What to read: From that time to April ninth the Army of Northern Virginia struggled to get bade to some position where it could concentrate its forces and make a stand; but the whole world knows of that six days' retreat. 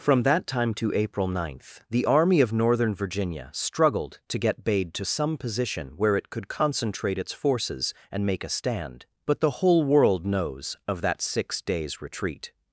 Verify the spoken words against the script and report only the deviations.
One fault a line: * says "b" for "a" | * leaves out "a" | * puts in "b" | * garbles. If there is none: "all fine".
all fine